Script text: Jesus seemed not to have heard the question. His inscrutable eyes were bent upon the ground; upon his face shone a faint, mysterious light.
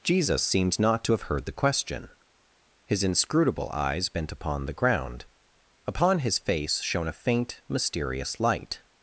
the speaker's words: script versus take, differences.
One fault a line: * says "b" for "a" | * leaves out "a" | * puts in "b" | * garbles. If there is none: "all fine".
* leaves out "were"